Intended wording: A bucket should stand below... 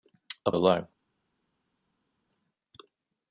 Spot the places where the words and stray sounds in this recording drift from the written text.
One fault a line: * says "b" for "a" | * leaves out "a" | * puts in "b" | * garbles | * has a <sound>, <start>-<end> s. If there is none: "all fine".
* leaves out "bucket should stand"